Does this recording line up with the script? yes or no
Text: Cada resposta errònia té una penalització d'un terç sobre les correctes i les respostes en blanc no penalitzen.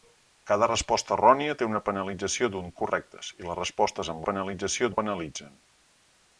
no